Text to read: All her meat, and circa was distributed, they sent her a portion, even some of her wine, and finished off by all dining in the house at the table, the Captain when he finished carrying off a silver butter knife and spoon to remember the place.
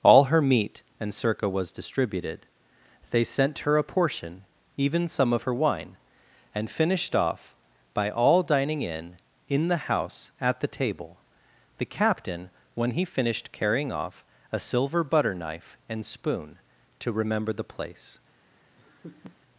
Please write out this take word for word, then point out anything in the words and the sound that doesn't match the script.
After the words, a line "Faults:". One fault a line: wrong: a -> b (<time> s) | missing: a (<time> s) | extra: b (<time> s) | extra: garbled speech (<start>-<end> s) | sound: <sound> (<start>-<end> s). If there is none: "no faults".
All her meat, and circa was distributed, they sent her a portion, even some of her wine, and finished off by all dining in in the house at the table, the Captain when he finished carrying off a silver butter knife and spoon to remember the place.
Faults:
extra: in (9.5 s)
sound: laugh (18.8-19.4 s)